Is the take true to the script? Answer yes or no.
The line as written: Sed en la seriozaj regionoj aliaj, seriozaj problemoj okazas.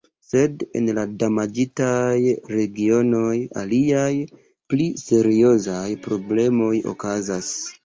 no